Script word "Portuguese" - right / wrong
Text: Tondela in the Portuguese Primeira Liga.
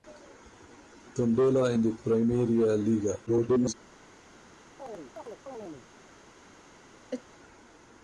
wrong